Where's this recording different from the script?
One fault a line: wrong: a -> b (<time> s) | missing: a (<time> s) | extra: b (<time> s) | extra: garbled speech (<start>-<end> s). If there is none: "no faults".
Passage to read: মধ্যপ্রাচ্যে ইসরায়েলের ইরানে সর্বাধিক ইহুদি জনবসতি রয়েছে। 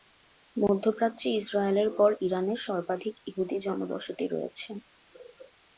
extra: পর (2.0 s)